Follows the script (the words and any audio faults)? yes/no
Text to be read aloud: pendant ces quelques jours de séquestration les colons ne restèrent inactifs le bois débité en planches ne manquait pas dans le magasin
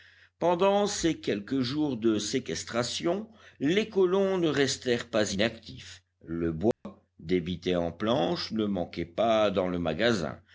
no